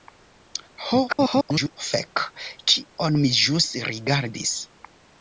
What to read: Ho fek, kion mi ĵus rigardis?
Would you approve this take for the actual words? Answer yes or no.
no